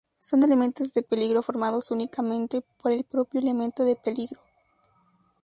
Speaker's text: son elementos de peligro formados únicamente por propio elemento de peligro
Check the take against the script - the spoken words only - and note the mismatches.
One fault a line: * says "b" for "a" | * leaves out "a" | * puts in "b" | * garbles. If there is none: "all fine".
* puts in "el"